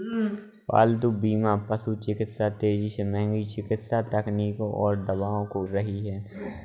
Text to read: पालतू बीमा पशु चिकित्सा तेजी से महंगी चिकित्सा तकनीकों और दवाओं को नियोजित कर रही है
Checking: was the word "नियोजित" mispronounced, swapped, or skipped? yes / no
yes